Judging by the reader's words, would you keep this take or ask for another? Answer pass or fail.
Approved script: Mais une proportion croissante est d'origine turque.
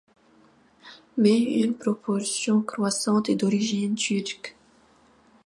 pass